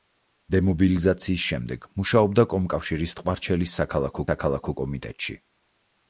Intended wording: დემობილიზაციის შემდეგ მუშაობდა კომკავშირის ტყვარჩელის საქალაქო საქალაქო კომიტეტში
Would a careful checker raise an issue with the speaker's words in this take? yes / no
no